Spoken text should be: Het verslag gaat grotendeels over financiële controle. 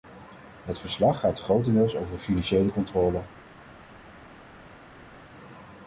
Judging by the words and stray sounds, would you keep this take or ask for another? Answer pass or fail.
pass